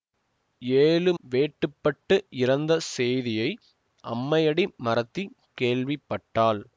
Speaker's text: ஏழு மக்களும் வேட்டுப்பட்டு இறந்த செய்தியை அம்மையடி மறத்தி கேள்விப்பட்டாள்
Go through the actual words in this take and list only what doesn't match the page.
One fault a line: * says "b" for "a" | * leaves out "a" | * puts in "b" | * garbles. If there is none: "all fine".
* leaves out "மக்களும்"